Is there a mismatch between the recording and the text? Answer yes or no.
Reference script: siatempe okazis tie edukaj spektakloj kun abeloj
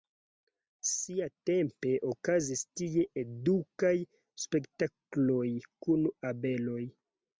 no